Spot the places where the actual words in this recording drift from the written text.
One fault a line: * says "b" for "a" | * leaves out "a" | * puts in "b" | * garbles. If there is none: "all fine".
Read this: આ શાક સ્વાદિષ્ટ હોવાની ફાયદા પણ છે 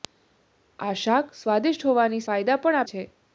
all fine